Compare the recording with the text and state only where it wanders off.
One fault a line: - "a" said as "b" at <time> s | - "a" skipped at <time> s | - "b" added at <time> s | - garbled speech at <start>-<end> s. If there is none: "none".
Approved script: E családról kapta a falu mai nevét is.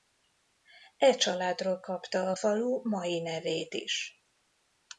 none